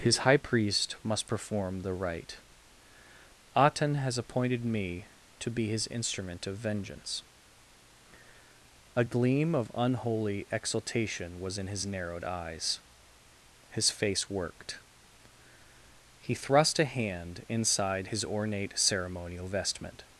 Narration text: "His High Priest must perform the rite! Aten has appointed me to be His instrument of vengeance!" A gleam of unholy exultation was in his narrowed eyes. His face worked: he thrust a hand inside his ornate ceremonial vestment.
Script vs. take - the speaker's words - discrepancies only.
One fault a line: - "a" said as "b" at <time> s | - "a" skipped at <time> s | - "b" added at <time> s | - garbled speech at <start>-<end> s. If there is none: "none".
none